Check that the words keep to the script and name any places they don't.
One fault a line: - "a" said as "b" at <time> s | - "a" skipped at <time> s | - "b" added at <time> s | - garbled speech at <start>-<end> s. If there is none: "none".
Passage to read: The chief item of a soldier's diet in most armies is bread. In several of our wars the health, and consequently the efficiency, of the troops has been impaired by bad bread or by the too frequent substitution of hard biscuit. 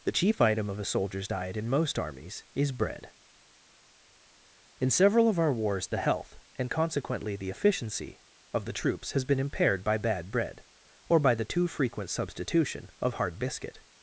none